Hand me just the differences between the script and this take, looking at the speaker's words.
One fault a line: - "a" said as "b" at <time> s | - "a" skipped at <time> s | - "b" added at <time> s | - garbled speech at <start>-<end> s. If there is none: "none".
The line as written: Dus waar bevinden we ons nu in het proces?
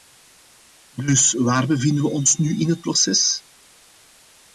none